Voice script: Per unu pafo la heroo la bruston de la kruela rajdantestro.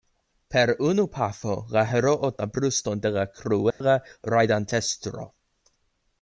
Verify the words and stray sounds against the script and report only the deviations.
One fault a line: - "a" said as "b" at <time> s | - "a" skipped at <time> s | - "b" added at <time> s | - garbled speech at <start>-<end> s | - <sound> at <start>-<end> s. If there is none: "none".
- dropout at 3.7-3.8 s